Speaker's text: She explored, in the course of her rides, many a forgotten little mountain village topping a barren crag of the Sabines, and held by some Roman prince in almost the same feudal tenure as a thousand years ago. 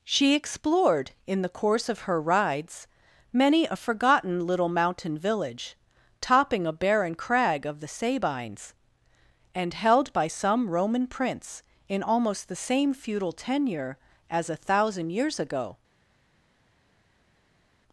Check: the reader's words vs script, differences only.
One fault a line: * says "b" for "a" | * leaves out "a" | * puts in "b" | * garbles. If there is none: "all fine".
all fine